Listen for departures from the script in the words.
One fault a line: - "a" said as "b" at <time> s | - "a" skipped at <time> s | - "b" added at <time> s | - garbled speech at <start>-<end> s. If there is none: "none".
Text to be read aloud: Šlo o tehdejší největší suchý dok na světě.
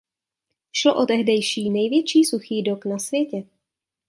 none